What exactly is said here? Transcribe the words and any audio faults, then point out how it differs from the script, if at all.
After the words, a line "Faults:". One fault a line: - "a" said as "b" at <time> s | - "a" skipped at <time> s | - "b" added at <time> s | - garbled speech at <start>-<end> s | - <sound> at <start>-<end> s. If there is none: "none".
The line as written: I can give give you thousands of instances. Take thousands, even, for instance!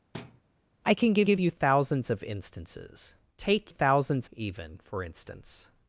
I can give give you thousands of instances. Take thousands, even, for instance!
Faults:
- thud at 0.1-0.4 s